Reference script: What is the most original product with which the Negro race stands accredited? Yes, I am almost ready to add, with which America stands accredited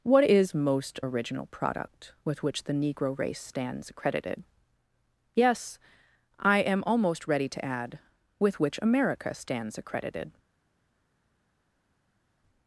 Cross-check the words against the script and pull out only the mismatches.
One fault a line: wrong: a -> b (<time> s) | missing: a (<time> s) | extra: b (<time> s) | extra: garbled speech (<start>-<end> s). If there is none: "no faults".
missing: the (0.6 s)